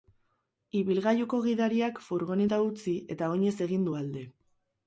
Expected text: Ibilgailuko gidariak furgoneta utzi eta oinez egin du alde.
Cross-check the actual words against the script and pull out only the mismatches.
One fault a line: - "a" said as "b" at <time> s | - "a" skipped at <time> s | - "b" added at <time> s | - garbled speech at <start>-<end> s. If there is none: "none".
none